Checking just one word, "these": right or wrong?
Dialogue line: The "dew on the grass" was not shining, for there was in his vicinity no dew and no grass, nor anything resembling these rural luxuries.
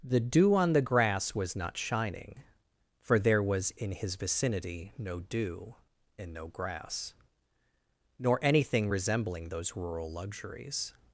wrong